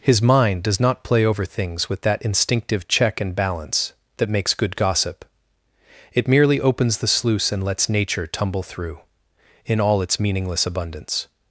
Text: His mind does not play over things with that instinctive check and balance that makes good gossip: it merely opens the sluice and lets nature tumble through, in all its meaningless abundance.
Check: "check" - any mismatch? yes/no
no